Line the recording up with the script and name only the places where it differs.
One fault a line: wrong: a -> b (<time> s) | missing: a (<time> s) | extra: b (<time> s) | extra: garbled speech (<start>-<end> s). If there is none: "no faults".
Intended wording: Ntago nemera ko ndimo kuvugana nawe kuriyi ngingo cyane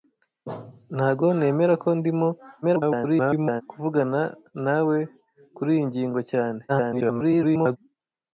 extra: garbled speech (2.6-3.6 s)
extra: garbled speech (6.7-7.8 s)